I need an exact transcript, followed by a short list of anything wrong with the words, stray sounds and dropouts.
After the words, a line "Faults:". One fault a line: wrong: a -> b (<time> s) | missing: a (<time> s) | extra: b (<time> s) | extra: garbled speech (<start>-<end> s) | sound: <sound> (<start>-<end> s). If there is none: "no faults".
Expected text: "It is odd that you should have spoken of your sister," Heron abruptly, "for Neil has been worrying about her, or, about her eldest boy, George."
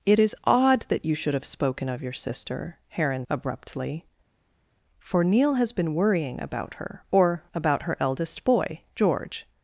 "It is odd that you should have spoken of your sister," Heron abruptly, "for Neil has been worrying about her, or, about her eldest boy, George."
Faults:
no faults